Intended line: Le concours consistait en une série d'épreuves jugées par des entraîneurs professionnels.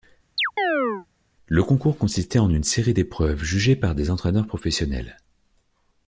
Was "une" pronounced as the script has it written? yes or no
yes